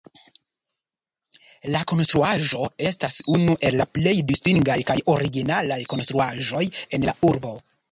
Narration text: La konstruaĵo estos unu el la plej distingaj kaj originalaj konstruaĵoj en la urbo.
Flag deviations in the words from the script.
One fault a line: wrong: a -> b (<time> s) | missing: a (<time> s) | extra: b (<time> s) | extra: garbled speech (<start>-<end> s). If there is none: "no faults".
wrong: estos -> estas (2.9 s)